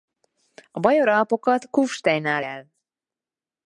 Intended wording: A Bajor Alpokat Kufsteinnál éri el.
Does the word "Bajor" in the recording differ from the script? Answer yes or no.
no